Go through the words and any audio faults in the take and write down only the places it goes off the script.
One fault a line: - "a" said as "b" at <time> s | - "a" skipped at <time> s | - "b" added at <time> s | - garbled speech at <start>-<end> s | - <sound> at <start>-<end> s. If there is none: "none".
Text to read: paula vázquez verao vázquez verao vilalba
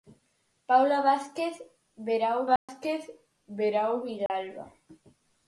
- dropout at 2.6-2.7 s
- dropout at 4.3-4.3 s